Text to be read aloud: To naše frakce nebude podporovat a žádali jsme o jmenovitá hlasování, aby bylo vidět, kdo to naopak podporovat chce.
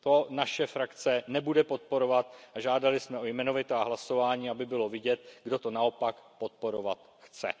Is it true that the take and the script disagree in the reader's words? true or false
false